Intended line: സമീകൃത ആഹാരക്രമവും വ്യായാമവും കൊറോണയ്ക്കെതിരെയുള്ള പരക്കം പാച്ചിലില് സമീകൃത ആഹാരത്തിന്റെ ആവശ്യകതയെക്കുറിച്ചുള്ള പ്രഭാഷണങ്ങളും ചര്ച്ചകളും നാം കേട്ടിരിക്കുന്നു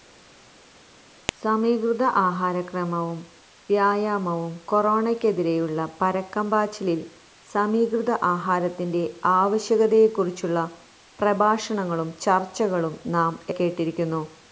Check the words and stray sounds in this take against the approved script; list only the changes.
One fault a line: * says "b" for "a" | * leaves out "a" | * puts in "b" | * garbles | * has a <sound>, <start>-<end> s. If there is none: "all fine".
all fine